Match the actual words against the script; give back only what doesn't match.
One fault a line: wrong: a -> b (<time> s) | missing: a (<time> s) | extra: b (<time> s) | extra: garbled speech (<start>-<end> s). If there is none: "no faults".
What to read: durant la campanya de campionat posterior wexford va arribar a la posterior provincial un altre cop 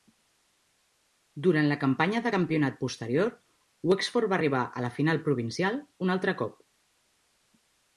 wrong: posterior -> final (5.0 s)